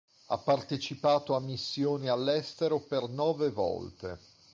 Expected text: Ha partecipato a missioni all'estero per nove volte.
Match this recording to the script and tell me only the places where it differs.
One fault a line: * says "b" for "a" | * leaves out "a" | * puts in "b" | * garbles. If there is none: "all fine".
all fine